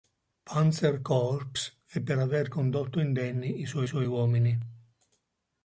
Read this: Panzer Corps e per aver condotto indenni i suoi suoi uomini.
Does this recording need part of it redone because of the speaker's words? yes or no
no